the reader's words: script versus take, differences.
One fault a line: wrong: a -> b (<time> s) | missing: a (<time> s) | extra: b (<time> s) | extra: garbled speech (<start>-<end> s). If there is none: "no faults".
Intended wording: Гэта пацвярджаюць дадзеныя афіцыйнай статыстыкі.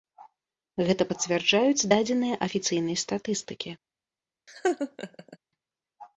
no faults